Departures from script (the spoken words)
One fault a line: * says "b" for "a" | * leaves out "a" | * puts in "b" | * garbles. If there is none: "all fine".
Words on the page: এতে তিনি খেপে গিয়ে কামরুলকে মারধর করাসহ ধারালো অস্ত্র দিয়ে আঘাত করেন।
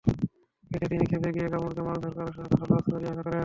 all fine